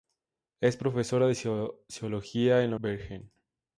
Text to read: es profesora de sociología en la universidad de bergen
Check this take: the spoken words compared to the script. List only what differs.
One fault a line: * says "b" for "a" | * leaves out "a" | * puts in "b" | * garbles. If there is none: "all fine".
* leaves out "universidad de"